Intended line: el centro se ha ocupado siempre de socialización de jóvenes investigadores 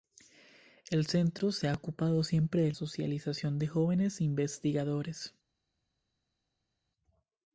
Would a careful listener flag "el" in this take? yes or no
no